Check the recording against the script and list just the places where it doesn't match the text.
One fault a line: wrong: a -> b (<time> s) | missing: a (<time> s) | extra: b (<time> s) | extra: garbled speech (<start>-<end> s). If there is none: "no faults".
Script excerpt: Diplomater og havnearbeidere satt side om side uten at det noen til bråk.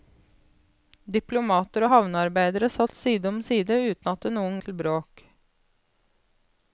no faults